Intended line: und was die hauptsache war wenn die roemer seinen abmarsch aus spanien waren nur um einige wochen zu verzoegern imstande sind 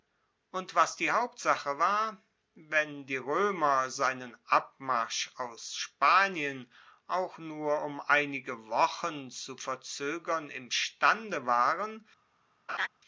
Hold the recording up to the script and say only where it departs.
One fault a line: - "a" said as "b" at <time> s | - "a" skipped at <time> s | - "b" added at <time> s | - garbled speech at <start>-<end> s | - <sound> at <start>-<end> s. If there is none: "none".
- "waren" said as "auch" at 7.1 s
- "sind" said as "waren" at 11.4 s
- laugh at 12.7-12.9 s